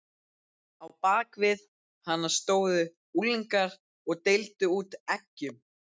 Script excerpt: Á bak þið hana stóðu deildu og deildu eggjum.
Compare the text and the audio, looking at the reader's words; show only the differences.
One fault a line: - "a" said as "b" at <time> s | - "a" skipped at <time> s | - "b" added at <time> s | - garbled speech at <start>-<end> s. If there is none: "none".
- "þið" said as "við" at 1.4 s
- "deildu" said as "unglingar" at 3.2 s
- "út" added at 4.8 s